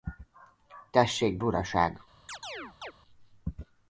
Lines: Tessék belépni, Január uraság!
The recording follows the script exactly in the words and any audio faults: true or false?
false